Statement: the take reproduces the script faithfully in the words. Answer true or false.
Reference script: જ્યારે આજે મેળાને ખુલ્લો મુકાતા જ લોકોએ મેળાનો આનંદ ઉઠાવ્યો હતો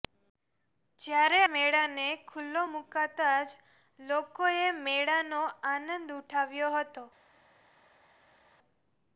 false